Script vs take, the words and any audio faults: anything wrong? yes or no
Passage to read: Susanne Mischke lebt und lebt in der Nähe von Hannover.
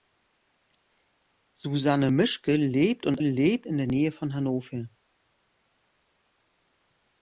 no